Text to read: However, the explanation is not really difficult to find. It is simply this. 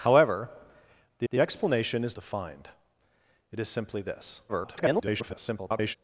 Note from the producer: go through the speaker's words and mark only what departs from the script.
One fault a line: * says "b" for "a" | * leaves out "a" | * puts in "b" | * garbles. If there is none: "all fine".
* puts in "the"
* leaves out "not really difficult"
* garbles